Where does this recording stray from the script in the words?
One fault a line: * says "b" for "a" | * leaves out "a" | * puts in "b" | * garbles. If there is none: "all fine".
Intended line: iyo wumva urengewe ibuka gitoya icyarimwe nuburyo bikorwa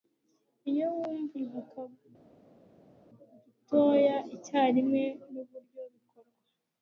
* leaves out "urengewe"